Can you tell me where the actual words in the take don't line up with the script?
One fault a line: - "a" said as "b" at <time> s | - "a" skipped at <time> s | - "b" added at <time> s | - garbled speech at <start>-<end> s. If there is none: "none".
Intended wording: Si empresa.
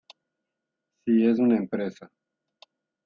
- "es una" added at 1.3 s